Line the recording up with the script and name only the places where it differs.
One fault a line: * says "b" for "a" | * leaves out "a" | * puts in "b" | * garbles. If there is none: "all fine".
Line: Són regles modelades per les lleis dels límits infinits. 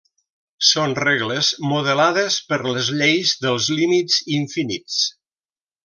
all fine